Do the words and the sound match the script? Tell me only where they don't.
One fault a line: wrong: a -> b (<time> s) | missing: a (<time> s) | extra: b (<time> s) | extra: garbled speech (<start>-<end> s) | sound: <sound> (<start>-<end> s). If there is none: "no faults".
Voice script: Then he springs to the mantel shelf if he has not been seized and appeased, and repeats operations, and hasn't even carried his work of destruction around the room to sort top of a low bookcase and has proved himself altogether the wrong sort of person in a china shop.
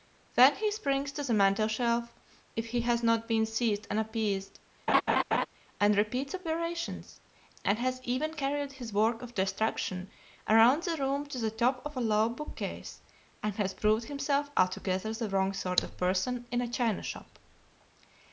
sound: laugh (4.9-5.5 s)
wrong: hasn't -> has (7.8 s)
wrong: sort -> the (11.4 s)